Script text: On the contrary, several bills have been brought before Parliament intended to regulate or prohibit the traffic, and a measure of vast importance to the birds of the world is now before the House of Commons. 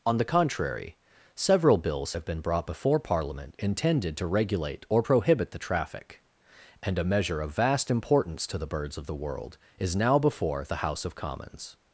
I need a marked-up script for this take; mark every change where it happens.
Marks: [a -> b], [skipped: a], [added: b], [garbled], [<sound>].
On the contrary, several bills have been brought before Parliament intended to regulate or prohibit the traffic, and a measure of vast importance to the birds of the world is now before the House of Commons.